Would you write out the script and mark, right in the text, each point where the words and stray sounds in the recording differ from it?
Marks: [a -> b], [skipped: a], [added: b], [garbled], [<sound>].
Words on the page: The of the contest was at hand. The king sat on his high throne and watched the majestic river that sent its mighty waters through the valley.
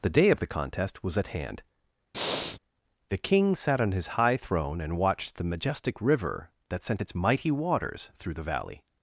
The [added: day] of the contest was at hand. [breath] The king sat on his high throne and watched the majestic river that sent its mighty waters through the valley.